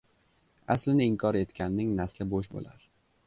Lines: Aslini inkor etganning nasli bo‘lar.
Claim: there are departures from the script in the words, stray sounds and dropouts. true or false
true